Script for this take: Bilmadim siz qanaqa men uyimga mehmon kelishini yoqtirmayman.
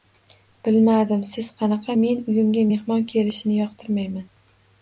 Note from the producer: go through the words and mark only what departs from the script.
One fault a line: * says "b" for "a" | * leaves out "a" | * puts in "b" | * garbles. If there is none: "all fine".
all fine